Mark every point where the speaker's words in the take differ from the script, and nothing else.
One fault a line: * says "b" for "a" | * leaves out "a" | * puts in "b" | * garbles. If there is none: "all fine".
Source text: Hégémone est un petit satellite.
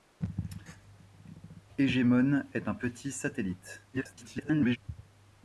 * garbles